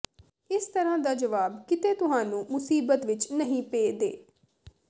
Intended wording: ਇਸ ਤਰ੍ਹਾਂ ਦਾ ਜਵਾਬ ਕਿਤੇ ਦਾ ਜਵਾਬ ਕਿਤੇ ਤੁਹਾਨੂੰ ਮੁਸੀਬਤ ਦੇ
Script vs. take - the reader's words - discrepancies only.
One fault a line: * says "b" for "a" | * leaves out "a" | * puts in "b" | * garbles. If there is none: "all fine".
* says "ਤੁਹਾਨੂੰ ਮੁਸੀਬਤ ਵਿੱਚ ਨਹੀਂ ਪੇ" for "ਦਾ ਜਵਾਬ ਕਿਤੇ ਤੁਹਾਨੂੰ ਮੁਸੀਬਤ"